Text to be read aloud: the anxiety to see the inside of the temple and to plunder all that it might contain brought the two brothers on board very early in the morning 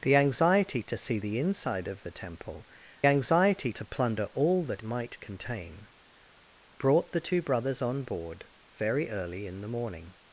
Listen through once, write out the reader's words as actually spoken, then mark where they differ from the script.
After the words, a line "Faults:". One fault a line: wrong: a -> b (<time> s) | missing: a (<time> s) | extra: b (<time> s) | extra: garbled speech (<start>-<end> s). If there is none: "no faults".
the anxiety to see the inside of the temple anxiety to plunder all that might contain brought the two brothers on board very early in the morning
Faults:
wrong: and -> anxiety (3.1 s)
missing: it (4.8 s)